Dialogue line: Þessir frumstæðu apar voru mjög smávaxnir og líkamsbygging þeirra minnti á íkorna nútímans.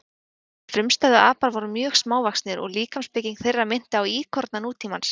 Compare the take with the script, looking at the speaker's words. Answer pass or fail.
pass